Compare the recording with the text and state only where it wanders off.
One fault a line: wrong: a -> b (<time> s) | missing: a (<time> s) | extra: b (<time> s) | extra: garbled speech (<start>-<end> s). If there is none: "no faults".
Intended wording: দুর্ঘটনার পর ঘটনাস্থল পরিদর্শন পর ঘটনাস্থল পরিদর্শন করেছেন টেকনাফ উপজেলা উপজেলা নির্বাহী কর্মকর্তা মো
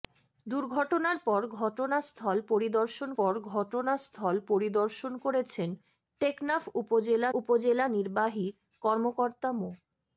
no faults